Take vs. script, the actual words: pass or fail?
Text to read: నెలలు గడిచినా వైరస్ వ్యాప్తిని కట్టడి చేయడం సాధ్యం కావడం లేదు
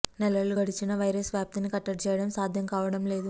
pass